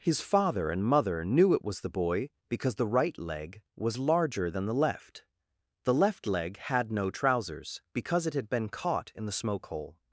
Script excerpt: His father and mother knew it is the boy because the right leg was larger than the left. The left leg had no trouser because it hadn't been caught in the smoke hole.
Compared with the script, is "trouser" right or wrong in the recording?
wrong